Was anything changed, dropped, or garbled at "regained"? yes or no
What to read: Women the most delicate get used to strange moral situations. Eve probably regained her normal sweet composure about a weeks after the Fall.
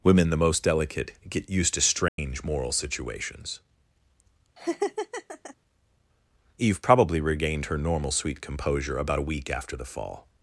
no